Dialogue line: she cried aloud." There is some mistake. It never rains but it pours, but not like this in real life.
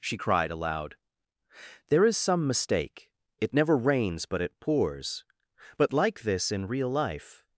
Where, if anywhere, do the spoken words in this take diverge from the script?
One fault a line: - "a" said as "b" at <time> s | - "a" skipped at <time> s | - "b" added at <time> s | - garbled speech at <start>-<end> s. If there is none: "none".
- "not" skipped at 5.9 s